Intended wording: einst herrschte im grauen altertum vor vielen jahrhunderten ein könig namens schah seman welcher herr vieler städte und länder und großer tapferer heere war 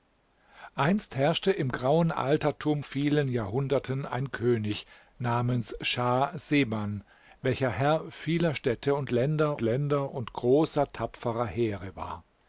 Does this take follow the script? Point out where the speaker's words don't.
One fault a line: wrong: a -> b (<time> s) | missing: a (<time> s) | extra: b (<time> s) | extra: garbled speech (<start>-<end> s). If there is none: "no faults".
missing: vor (2.8 s)
extra: länder (9.6 s)